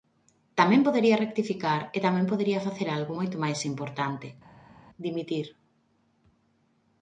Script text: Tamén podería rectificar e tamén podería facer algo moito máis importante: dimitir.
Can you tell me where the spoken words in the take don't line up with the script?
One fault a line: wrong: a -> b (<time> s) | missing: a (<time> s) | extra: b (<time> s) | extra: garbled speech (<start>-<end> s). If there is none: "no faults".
no faults